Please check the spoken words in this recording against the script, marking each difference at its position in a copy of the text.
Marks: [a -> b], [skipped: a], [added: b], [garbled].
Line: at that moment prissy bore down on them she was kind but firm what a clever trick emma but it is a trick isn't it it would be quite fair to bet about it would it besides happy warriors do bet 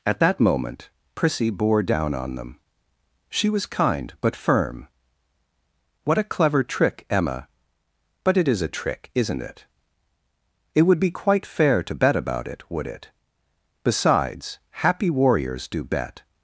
at that moment prissy bore down on them she was kind but firm what a clever trick emma but it is a trick isn't it it would be quite fair to bet about it would it besides happy warriors do bet